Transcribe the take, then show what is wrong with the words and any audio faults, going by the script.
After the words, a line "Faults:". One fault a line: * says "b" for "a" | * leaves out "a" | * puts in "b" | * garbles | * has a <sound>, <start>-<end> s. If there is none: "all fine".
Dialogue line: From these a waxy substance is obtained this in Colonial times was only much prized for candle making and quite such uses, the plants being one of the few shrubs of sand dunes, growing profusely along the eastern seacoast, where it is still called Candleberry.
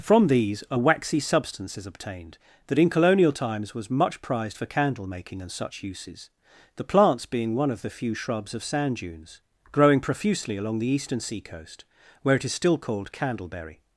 From these a waxy substance is obtained that in Colonial times was much prized for candle making and such uses, the plants being one of the few shrubs of sand dunes, growing profusely along the eastern seacoast, where it is still called Candleberry.
Faults:
* says "that" for "this"
* leaves out "only"
* leaves out "quite"